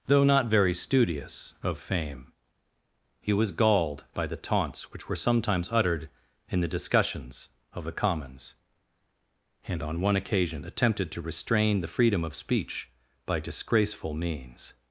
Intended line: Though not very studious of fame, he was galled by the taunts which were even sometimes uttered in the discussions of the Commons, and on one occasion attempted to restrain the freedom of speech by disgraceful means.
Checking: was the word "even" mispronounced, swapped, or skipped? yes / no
yes